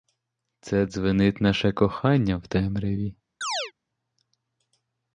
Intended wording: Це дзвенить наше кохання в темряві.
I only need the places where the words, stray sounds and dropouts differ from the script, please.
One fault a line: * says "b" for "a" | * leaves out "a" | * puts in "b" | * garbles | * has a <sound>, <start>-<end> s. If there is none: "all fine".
* has a chirp, 3.4-3.7 s